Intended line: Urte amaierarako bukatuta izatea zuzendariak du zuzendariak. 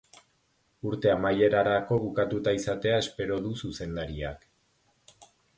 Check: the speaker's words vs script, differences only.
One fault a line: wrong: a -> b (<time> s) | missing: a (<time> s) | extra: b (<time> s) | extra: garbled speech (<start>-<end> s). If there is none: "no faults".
wrong: zuzendariak -> espero (3.1 s)